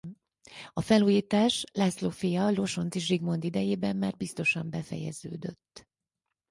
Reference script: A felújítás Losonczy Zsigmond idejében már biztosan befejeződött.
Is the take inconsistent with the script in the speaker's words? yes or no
yes